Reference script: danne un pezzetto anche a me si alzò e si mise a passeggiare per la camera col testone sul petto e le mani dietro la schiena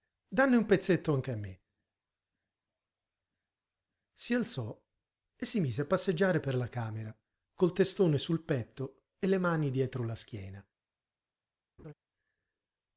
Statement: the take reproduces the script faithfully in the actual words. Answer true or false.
true